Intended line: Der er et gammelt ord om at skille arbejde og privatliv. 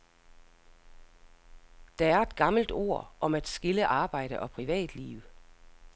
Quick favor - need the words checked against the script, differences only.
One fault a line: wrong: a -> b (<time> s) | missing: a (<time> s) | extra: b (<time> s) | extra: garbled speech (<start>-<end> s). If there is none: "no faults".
no faults